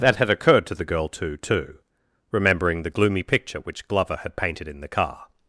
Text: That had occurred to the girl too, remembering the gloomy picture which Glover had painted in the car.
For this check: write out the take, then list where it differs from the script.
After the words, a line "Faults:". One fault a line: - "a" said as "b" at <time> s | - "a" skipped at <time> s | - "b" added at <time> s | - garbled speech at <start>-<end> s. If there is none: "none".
That had occurred to the girl too too, remembering the gloomy picture which Glover had painted in the car.
Faults:
- "too" added at 1.4 s